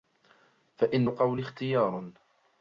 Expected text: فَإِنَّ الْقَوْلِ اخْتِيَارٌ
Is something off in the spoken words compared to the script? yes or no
no